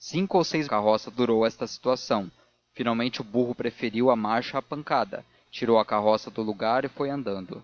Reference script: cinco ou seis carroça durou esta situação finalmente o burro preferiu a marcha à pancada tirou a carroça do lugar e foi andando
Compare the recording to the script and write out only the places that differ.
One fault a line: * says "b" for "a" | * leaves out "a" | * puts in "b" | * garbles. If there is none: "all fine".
all fine